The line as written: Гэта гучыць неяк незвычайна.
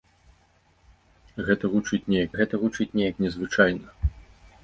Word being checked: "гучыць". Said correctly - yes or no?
yes